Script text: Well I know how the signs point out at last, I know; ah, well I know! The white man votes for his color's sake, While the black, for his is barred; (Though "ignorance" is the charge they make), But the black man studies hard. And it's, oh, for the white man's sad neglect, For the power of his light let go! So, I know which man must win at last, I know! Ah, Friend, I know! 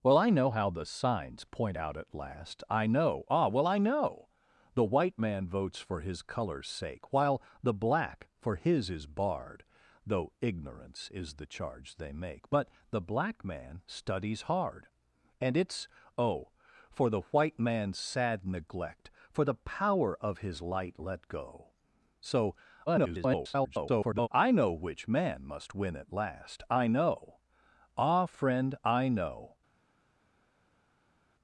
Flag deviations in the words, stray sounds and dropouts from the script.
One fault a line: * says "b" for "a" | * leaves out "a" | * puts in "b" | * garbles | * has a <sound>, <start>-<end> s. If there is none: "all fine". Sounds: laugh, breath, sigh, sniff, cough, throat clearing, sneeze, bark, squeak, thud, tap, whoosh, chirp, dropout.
* garbles